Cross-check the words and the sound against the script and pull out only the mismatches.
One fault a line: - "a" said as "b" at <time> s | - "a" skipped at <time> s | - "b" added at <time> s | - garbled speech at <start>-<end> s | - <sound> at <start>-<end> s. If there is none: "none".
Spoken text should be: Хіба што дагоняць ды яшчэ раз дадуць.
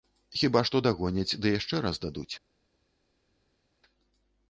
none